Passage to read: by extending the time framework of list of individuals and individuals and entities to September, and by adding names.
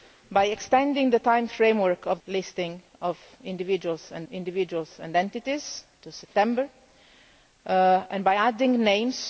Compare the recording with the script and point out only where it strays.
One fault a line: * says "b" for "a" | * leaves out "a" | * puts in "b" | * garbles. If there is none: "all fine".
all fine